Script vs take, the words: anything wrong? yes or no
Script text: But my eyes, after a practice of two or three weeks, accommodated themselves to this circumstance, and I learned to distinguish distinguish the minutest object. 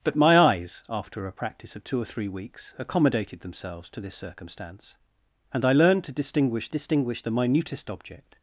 no